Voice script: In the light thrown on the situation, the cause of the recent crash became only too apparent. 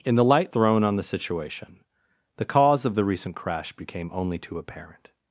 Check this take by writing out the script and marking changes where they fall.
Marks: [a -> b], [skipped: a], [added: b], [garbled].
In the light thrown on the situation, the cause of the recent crash became only too apparent.